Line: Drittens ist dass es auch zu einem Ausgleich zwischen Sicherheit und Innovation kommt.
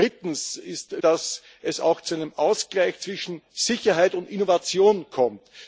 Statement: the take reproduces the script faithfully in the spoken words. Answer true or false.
true